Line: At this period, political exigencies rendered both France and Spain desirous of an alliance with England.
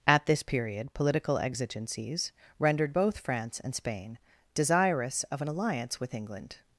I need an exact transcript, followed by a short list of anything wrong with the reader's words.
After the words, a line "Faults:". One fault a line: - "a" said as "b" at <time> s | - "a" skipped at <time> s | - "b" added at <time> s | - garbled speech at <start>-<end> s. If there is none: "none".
At this period, political exigencies rendered both France and Spain desirous of an alliance with England.
Faults:
none